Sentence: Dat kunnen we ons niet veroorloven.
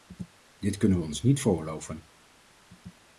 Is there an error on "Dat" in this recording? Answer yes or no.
yes